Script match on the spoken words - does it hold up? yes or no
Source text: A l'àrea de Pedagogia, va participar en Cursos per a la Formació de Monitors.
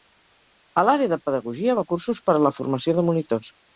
no